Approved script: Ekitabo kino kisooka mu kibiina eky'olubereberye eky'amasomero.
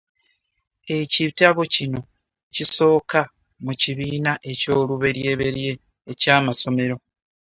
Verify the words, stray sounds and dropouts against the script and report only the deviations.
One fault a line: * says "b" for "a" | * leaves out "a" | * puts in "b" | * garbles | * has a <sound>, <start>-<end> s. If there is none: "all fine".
all fine